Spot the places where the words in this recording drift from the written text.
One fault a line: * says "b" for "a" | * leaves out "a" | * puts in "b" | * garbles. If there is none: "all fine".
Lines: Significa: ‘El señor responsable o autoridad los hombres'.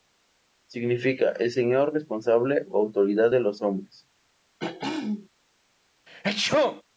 * puts in "de"